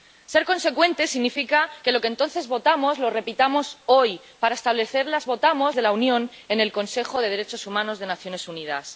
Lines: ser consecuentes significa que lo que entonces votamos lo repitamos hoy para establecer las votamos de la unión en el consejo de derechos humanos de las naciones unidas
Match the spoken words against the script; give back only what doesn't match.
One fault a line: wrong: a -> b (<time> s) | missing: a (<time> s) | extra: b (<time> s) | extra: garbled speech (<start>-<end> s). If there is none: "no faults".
no faults